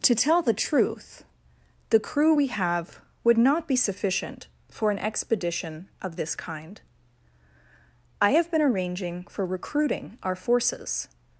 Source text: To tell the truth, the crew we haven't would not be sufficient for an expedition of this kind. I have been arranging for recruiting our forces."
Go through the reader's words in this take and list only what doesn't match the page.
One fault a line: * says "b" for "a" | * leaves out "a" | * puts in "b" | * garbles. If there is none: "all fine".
* says "have" for "haven't"